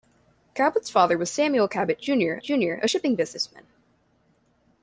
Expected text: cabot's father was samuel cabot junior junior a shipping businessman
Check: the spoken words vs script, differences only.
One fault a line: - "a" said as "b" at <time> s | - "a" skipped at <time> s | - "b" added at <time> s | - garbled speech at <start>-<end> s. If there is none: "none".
none